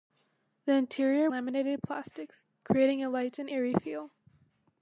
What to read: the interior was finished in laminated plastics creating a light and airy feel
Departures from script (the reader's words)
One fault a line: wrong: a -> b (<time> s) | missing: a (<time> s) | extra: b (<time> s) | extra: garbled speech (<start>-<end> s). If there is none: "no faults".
missing: was finished in (1.3 s)